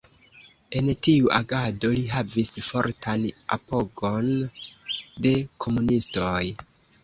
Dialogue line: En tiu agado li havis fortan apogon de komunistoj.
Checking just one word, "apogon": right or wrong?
right